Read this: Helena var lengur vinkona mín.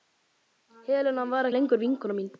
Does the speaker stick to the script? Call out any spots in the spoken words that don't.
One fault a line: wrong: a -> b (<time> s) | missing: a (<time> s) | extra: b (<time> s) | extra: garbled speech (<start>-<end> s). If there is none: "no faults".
no faults